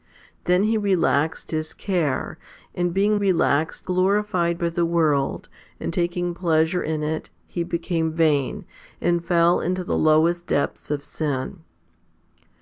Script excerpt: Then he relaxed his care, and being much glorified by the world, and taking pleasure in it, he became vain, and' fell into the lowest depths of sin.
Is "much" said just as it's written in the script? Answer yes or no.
no